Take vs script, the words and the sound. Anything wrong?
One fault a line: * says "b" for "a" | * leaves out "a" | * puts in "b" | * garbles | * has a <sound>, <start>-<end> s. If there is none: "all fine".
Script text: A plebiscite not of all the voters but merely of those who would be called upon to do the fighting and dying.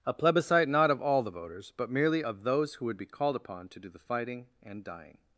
all fine